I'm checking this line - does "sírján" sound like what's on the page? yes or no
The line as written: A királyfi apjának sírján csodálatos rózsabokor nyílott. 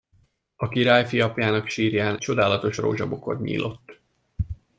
yes